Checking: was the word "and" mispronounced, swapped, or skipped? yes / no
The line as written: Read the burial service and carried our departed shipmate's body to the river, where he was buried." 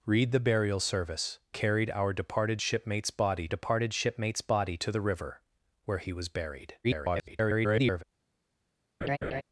yes